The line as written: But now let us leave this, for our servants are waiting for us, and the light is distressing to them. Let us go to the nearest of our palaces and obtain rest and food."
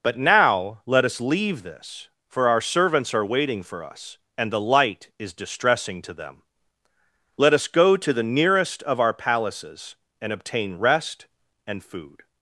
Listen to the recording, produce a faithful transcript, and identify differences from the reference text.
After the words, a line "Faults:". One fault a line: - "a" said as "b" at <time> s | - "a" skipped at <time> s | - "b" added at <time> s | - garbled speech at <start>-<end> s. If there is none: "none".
But now let us leave this, for our servants are waiting for us, and the light is distressing to them. Let us go to the nearest of our palaces and obtain rest and food."
Faults:
none